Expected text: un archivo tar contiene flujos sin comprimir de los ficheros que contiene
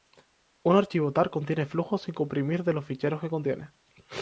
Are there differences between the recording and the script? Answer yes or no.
no